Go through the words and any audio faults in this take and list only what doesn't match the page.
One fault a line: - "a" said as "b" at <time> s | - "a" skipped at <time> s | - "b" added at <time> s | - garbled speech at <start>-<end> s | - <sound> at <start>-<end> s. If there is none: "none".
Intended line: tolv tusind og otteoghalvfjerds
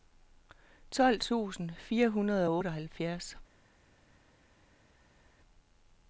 - "fire hundrede" added at 1.8 s